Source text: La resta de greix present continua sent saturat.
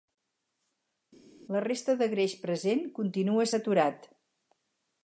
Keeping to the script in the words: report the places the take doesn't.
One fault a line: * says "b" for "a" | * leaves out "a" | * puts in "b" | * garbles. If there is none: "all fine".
* leaves out "sent"